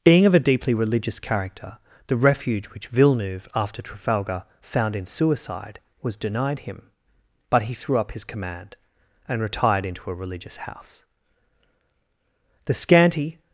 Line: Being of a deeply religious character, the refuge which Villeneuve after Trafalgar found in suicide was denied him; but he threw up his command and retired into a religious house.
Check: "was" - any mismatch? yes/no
no